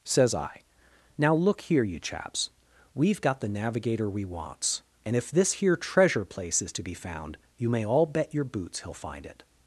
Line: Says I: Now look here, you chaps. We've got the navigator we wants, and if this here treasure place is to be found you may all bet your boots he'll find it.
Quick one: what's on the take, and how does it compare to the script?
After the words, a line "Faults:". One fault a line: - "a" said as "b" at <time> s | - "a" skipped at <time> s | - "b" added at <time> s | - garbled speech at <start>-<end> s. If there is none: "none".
Says I: Now look here, you chaps. We've got the navigator we wants, and if this here treasure place is to be found you may all bet your boots he'll find it.
Faults:
none